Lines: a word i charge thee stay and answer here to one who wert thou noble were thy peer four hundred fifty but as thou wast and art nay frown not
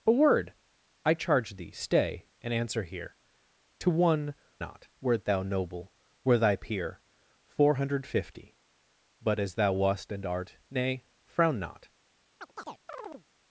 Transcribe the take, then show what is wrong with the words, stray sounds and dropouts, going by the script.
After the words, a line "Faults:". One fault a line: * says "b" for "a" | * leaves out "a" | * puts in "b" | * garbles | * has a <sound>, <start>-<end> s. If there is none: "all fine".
a word i charge thee stay and answer here to one not wert thou noble were thy peer four hundred fifty but as thou wast and art nay frown not
Faults:
* says "not" for "who"
* has a chirp, 12.4-13.3 s